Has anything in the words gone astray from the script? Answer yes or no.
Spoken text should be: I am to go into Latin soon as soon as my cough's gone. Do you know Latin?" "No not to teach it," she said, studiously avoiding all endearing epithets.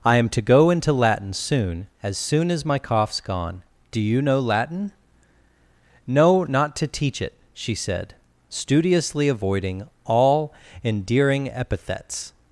no